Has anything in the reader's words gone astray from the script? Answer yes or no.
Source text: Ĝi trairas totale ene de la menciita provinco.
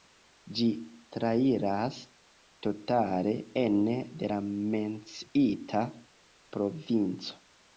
no